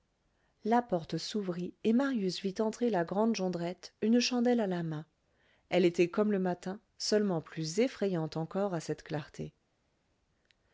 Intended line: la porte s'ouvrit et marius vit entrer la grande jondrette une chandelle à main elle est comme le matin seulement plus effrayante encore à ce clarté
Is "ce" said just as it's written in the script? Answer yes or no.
no